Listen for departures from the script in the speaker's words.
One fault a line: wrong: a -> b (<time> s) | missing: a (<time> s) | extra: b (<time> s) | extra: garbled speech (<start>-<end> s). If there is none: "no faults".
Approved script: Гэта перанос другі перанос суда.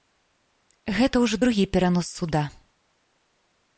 wrong: перанос -> ўжо (1.2 s)